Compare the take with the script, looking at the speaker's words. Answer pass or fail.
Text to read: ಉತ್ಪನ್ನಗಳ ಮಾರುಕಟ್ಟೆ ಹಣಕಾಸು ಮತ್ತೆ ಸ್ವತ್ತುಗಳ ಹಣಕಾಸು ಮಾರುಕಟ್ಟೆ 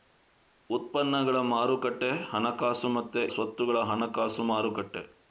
pass